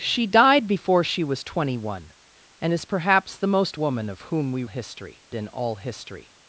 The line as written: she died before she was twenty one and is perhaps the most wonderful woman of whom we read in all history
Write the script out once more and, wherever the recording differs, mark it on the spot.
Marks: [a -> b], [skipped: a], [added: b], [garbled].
she died before she was twenty one and is perhaps the most [skipped: wonderful] woman of whom we [read -> history] in all history